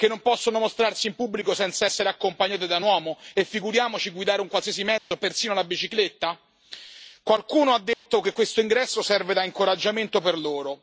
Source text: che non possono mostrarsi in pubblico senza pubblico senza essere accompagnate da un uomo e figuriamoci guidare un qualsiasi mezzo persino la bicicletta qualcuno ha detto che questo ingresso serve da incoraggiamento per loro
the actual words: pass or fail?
fail